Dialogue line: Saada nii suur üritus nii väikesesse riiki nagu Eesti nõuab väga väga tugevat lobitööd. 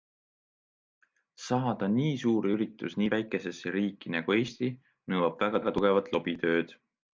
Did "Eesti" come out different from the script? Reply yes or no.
no